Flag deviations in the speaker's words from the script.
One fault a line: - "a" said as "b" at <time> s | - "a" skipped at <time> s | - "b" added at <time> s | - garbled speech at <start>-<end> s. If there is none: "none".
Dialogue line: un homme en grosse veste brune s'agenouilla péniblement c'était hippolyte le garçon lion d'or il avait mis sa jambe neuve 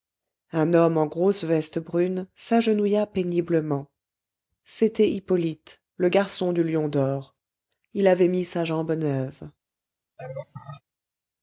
- "du" added at 6.5 s